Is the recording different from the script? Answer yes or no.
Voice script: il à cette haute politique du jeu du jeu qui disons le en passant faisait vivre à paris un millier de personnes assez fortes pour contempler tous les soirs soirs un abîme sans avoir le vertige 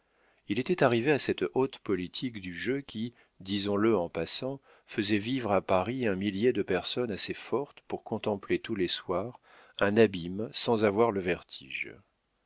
yes